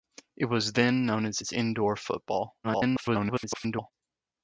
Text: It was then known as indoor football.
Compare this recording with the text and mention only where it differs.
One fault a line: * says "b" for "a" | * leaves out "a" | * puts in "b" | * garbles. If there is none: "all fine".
* puts in "as"
* garbles